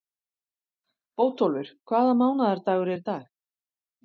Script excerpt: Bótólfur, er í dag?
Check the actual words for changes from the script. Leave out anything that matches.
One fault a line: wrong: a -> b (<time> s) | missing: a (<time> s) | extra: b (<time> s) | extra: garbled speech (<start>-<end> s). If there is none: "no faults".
extra: hvaða mánaðardagur (1.9 s)